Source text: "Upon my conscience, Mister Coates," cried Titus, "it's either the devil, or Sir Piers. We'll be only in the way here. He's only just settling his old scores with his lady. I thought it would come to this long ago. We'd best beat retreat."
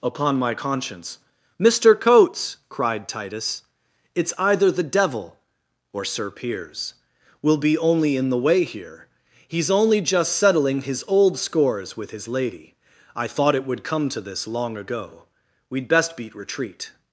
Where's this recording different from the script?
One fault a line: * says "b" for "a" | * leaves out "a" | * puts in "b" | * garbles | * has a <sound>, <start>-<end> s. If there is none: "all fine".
all fine